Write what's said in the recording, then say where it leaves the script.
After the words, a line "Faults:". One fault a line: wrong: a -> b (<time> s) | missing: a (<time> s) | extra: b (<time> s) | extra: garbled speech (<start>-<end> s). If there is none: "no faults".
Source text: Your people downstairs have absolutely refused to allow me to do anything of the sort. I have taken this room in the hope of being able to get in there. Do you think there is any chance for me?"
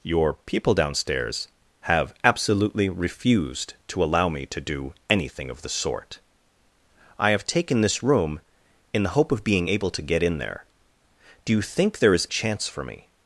Your people downstairs have absolutely refused to allow me to do anything of the sort. I have taken this room in the hope of being able to get in there. Do you think there is chance for me?"
Faults:
missing: any (12.3 s)